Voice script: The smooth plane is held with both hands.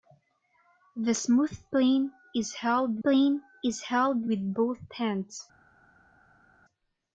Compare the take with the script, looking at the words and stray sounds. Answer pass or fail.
fail